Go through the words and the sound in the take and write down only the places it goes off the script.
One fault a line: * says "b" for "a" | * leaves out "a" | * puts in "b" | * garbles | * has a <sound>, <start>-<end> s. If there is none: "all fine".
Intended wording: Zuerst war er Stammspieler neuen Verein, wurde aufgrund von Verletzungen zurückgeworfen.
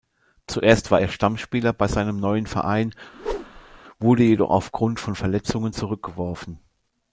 * puts in "bei seinem"
* has a whoosh, 3.1-3.8 s
* puts in "jedoch"